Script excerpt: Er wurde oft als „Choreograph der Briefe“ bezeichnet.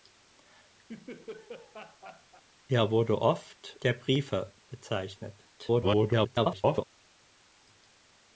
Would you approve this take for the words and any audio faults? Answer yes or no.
no